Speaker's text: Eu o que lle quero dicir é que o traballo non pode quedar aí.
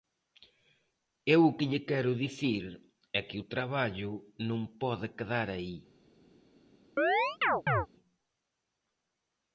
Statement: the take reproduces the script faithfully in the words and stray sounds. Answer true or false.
false